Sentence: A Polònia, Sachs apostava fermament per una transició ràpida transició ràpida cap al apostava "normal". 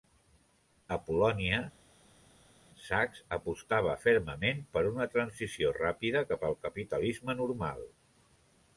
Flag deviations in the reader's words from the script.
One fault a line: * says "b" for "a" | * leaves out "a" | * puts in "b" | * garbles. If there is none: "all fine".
* leaves out "transició ràpida"
* says "capitalisme" for "apostava"